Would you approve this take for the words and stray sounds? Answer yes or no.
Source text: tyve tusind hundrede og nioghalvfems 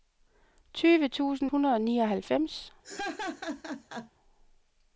no